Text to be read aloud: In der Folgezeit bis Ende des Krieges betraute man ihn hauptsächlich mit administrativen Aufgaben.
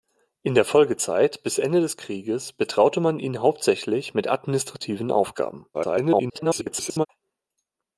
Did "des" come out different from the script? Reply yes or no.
no